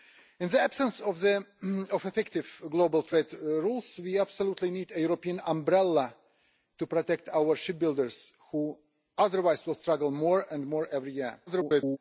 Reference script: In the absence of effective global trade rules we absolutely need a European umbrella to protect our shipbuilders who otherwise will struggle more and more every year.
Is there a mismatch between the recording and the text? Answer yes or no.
yes